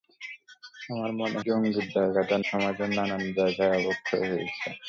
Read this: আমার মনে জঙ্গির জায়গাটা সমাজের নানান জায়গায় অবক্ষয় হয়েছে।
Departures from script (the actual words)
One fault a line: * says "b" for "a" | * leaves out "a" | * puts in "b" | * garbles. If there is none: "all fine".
all fine